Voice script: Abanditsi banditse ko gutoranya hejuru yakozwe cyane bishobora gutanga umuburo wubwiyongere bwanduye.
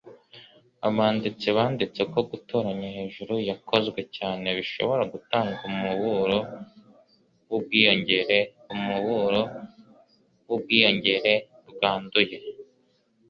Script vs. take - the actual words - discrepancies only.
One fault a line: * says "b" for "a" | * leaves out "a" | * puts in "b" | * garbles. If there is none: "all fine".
* puts in "umuburo wubwiyongere"